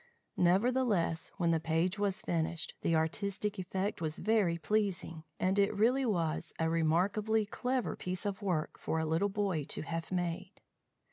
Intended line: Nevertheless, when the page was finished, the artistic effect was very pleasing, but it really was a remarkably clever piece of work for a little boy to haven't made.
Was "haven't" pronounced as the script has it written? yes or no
no